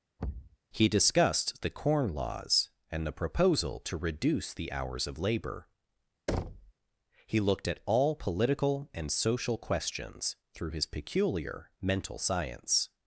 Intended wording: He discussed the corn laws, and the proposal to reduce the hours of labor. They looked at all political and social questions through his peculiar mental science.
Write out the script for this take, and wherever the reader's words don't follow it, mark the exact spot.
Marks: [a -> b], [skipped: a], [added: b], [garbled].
He discussed the corn laws, and the proposal to reduce the hours of labor. [They -> He] looked at all political and social questions through his peculiar mental science.